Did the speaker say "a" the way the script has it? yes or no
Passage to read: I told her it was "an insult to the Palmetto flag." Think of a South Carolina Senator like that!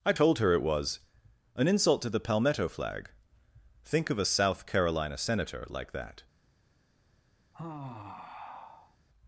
yes